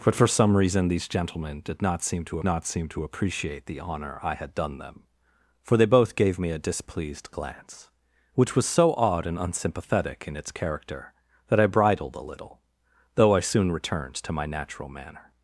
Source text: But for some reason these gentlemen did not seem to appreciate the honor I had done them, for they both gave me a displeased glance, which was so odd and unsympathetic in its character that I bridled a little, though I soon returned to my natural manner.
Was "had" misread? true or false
false